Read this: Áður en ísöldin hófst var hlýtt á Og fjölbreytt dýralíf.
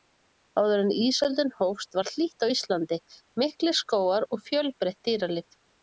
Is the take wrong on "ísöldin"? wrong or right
right